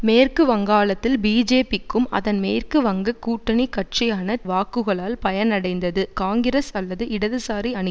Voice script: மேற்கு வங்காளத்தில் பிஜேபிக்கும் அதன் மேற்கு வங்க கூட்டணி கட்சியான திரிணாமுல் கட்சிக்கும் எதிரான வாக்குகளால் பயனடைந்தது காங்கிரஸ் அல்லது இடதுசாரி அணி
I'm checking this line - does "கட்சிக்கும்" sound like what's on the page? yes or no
no